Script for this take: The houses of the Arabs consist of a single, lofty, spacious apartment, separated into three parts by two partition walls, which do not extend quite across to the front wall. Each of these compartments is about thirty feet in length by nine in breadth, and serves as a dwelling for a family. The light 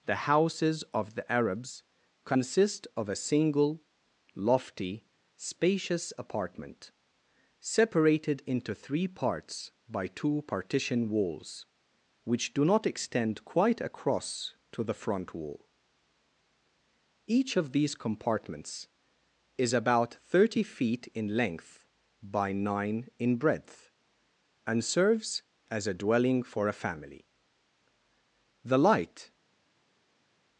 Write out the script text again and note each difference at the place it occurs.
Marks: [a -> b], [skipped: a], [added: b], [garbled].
The houses of the Arabs consist of a single, lofty, spacious apartment, separated into three parts by two partition walls, which do not extend quite across to the front wall. Each of these compartments is about thirty feet in length by nine in breadth, and serves as a dwelling for a family. The light